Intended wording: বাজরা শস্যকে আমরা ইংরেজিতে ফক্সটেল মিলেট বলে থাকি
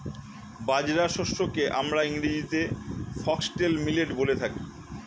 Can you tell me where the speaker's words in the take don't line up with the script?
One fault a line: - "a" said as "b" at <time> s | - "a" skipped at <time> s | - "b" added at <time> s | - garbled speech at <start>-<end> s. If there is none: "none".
none